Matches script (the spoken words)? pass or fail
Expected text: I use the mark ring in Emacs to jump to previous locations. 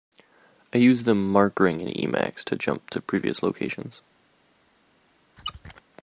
pass